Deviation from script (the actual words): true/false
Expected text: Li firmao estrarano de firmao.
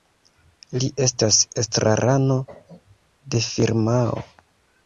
true